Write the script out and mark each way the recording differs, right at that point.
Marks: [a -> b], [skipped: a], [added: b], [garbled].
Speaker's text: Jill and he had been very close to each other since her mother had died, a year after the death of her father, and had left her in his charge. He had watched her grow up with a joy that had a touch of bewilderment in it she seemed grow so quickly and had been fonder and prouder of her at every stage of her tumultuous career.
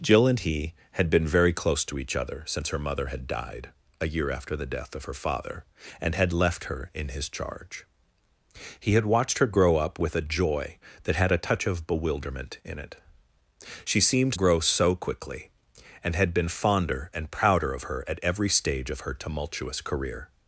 Jill and he had been very close to each other since her mother had died, a year after the death of her father, and had left her in his charge. He had watched her grow up with a joy that had a touch of bewilderment in it she seemed grow so quickly and had been fonder and prouder of her at every stage of her tumultuous career.